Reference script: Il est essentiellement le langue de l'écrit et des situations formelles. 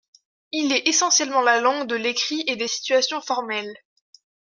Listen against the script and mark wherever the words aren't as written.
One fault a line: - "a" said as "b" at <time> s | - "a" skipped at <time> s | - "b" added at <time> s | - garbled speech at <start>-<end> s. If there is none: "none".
- "le" said as "la" at 1.4 s